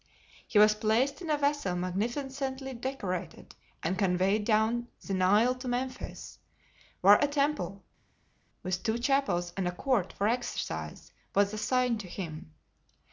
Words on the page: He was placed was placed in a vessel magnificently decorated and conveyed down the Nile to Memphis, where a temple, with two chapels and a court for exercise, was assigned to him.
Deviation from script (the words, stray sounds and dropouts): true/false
true